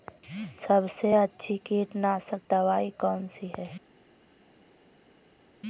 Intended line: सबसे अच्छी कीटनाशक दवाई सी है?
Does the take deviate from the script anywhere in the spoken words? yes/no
yes